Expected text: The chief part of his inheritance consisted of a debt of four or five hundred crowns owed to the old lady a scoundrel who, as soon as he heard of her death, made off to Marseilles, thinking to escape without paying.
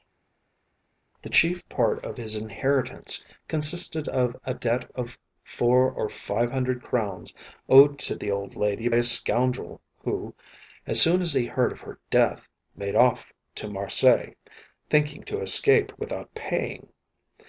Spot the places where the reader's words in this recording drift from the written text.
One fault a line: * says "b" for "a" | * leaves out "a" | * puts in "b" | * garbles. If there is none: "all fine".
all fine